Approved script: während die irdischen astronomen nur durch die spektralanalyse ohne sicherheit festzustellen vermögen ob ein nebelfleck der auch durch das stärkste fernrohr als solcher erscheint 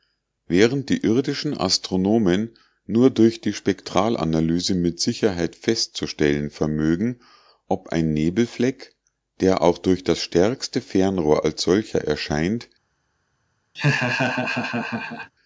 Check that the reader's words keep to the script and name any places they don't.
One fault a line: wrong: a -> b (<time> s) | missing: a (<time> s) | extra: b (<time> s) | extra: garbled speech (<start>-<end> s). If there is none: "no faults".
wrong: ohne -> mit (4.7 s)